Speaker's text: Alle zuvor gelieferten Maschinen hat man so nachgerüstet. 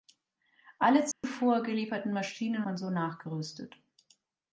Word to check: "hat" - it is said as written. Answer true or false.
false